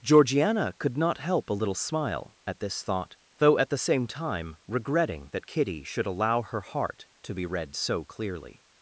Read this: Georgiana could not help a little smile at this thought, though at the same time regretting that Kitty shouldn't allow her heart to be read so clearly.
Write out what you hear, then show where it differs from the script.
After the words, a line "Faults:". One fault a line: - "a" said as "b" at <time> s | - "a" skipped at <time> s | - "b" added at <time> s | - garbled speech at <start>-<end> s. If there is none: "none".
Georgiana could not help a little smile at this thought, though at the same time regretting that Kitty should allow her heart to be read so clearly.
Faults:
- "shouldn't" said as "should" at 5.8 s